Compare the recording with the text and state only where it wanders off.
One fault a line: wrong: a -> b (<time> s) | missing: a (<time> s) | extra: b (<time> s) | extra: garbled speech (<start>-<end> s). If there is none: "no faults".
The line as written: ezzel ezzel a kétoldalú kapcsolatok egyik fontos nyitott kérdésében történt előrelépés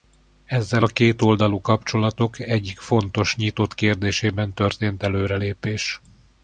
missing: ezzel (0.8 s)